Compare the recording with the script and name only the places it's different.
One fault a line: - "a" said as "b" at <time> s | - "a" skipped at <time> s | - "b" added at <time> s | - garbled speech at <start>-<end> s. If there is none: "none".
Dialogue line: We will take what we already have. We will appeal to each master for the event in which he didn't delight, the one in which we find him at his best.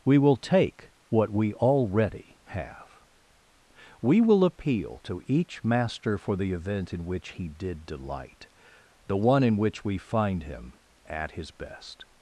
- "didn't" said as "did" at 7.5 s